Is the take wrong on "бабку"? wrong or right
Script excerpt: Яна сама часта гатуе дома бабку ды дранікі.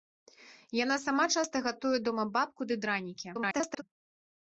right